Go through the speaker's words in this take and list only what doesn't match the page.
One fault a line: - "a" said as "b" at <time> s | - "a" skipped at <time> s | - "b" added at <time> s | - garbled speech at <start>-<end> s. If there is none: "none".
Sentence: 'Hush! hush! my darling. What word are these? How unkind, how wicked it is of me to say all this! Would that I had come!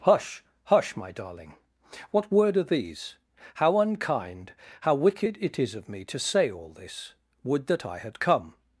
none